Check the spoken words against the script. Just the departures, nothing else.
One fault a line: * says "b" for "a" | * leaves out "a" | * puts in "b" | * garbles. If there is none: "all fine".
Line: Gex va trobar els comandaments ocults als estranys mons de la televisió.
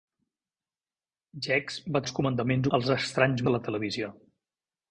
* leaves out "trobar"
* leaves out "ocults"
* leaves out "mons"